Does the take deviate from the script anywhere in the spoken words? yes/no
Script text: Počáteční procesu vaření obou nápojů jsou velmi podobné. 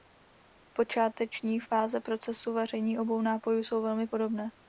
yes